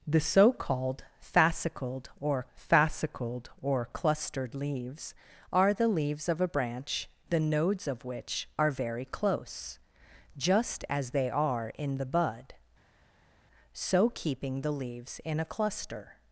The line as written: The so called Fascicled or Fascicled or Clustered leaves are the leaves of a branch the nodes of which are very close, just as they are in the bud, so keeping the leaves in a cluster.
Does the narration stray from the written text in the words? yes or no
no